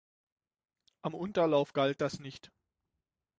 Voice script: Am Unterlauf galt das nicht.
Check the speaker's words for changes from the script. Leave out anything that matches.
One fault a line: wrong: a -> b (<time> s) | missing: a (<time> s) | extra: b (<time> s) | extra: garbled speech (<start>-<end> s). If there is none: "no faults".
no faults